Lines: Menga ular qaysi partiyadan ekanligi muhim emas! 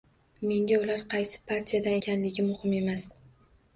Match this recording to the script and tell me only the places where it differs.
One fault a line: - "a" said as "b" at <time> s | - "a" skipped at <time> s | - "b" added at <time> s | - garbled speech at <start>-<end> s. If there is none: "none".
none